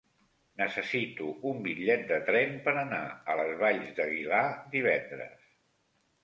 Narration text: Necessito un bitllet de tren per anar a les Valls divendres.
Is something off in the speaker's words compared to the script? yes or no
yes